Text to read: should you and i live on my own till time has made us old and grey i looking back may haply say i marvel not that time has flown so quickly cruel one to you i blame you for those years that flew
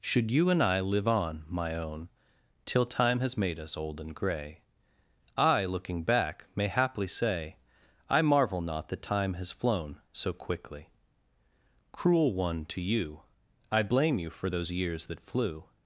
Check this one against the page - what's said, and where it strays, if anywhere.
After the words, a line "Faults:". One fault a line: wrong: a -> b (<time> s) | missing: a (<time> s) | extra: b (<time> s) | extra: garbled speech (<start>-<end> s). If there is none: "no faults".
should you and i live on my own till time has made us old and grey i looking back may haply say i marvel not that time has flown so quickly cruel one to you i blame you for those years that flew
Faults:
no faults